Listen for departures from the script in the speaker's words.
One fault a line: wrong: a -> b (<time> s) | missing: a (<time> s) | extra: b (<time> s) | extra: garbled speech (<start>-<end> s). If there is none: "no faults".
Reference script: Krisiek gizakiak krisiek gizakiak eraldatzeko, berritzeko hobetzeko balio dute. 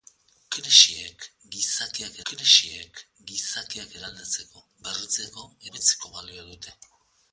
no faults